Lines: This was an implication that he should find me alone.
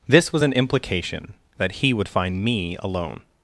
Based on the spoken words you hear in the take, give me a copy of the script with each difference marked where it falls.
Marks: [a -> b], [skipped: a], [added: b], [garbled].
This was an implication that he [should -> would] find me alone.